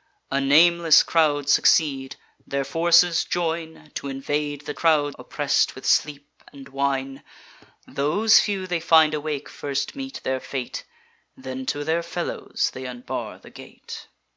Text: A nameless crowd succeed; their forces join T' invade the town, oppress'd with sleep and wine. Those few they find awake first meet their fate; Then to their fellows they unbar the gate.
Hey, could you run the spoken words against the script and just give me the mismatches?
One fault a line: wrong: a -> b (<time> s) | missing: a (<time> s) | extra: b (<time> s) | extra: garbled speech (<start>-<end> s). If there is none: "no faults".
wrong: town -> crowd (4.7 s)